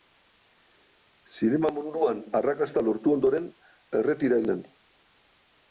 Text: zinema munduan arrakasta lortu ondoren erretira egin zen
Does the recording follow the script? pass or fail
fail